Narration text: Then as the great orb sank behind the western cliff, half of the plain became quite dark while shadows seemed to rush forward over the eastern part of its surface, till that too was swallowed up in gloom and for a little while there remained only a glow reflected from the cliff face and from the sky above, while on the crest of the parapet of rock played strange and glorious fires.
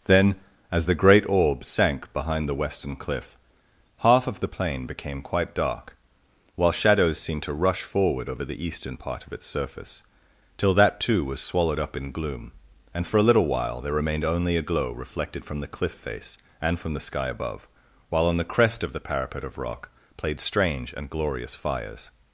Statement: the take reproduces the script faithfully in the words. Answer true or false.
true